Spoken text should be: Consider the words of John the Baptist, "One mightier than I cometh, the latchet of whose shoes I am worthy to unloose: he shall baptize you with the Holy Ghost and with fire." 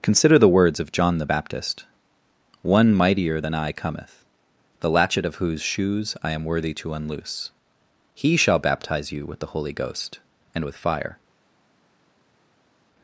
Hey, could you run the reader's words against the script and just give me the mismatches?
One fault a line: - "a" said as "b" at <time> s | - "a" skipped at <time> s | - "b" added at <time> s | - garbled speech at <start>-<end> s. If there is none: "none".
none